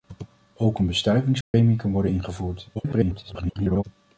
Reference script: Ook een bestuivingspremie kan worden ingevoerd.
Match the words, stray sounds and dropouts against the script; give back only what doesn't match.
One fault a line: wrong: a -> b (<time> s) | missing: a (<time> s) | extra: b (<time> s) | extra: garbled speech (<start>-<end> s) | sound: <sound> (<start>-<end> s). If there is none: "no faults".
sound: dropout (1.4-1.5 s)
extra: garbled speech (2.7-3.8 s)